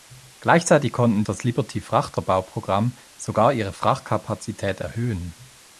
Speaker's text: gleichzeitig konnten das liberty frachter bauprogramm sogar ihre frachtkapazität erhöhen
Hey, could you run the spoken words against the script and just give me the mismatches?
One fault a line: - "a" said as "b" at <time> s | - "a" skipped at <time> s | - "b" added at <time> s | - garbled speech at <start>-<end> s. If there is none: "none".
none